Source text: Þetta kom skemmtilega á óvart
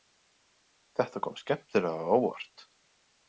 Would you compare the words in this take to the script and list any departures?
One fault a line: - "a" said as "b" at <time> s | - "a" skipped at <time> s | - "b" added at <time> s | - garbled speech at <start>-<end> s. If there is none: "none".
none